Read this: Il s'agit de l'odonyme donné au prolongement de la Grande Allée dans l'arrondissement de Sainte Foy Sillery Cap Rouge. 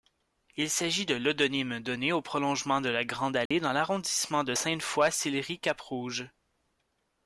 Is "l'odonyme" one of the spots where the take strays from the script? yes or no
no